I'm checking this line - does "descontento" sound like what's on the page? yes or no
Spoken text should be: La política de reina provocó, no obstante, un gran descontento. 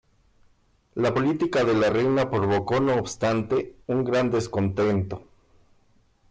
yes